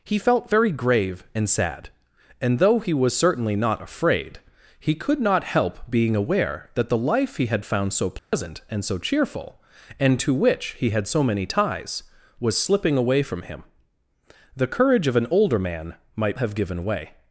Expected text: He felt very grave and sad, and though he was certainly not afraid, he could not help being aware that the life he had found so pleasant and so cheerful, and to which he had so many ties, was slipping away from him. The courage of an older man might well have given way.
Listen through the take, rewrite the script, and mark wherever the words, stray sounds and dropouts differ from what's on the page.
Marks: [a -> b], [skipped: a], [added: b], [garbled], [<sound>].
He felt very grave and sad, and though he was certainly not afraid, he could not help being aware that the life he had found so pleasant [dropout] and so cheerful, and to which he had so many ties, was slipping away from him. The courage of an older man might [skipped: well] have given way.